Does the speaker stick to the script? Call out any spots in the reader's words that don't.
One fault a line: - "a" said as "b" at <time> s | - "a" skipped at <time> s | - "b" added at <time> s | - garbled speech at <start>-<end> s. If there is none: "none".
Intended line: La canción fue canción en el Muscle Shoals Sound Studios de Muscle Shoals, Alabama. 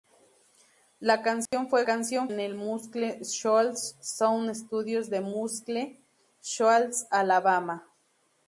none